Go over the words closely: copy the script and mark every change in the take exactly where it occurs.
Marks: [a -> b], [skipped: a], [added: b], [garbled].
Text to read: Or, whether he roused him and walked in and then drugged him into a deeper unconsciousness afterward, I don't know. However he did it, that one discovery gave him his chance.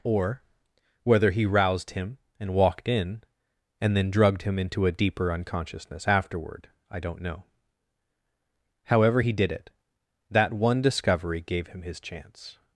Or, whether he roused him and walked in and then drugged him into a deeper unconsciousness afterward, I don't know. However he did it, that one discovery gave him his chance.